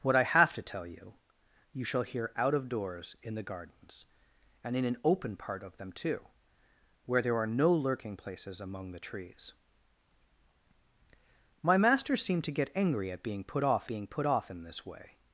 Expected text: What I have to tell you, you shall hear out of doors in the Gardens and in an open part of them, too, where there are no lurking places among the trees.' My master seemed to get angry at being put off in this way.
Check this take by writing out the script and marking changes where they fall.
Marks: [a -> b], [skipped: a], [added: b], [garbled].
What I have to tell you, you shall hear out of doors in the Gardens and in an open part of them, too, where there are no lurking places among the trees.' My master seemed to get angry at being put off [added: being put off] in this way.